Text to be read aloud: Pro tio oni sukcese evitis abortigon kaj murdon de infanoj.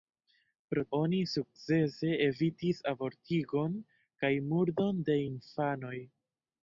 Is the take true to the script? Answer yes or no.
no